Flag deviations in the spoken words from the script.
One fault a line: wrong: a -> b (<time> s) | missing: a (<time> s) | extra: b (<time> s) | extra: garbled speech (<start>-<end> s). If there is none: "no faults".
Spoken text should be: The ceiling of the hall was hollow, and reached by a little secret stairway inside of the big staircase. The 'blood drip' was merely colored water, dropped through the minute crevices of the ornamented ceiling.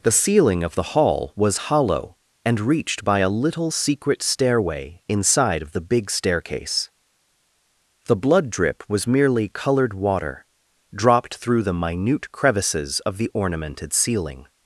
no faults